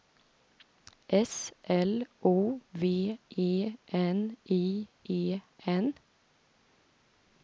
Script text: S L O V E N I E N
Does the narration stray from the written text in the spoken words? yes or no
no